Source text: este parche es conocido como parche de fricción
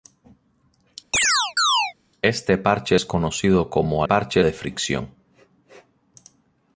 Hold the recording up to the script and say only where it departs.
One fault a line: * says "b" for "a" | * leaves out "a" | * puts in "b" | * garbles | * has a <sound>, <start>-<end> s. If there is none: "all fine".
* has a chirp, 1.1-1.9 s